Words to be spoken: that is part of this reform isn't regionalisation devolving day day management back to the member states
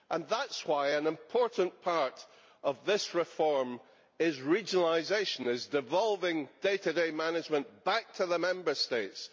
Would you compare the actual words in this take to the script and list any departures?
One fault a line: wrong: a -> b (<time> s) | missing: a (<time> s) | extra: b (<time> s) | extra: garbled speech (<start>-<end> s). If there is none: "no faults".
extra: why an important (0.6 s)
wrong: isn't -> is (4.2 s)
extra: to (6.8 s)